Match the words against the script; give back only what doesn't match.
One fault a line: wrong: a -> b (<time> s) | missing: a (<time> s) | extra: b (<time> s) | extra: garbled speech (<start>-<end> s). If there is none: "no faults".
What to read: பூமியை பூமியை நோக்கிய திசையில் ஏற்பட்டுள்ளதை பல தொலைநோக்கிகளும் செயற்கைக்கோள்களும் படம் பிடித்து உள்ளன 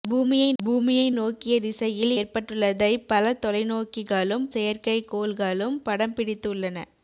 no faults